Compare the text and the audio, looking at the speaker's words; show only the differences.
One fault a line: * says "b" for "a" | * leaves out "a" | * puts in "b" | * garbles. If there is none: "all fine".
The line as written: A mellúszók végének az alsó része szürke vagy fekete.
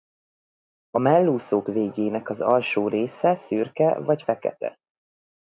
all fine